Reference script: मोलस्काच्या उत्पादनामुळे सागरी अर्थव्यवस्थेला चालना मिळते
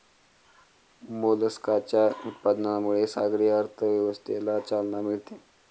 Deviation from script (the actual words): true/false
false